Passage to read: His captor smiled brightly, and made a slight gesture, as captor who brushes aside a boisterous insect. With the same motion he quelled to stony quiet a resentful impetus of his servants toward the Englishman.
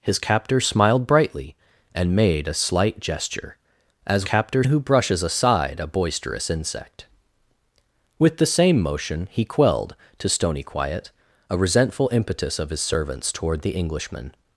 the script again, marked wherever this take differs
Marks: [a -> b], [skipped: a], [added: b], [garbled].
His captor smiled brightly, and made a slight gesture, as captor who brushes aside a boisterous insect. With the same motion he quelled to stony quiet a resentful impetus of his servants toward the Englishman.